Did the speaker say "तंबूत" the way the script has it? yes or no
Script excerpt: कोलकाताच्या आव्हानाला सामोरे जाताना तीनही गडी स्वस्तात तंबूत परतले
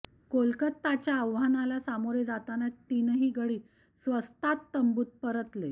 yes